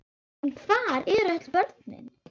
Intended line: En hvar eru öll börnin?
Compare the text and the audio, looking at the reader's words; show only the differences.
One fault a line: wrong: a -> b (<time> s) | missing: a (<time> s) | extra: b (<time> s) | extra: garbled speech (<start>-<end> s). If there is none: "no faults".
no faults